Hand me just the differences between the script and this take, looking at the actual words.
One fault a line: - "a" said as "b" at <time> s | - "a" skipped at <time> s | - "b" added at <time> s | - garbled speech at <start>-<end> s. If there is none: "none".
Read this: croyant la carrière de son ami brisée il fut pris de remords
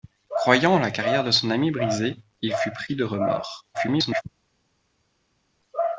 - garbled speech at 3.7-4.2 s